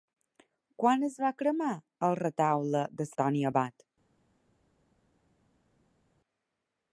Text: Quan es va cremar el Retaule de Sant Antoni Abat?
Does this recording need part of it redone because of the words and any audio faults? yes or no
yes